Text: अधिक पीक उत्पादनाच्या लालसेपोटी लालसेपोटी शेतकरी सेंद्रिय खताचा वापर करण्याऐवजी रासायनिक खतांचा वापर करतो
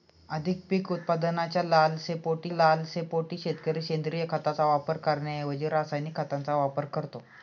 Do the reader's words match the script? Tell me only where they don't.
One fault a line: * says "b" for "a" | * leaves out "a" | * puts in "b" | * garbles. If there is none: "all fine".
all fine